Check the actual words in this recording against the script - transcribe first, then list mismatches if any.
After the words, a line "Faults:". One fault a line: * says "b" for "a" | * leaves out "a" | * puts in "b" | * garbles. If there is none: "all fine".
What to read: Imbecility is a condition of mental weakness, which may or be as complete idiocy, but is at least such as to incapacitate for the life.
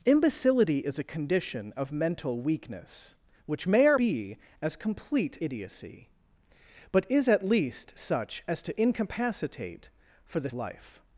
Imbecility is a condition of mental weakness, which may or be as complete idiocy, but is at least such as to incapacitate for the life.
Faults:
all fine